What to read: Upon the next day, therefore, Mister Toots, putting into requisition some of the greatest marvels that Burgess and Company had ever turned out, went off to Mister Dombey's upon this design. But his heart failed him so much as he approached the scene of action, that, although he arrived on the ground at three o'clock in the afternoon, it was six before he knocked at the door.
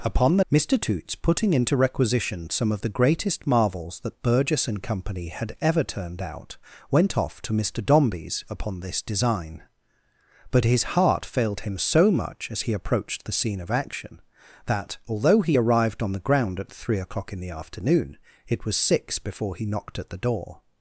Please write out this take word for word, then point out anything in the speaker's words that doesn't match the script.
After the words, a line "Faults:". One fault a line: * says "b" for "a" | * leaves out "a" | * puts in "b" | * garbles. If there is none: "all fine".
Upon the Mister Toots, putting into requisition some of the greatest marvels that Burgess and Company had ever turned out, went off to Mister Dombey's upon this design. But his heart failed him so much as he approached the scene of action, that, although he arrived on the ground at three o'clock in the afternoon, it was six before he knocked at the door.
Faults:
* leaves out "next day therefore"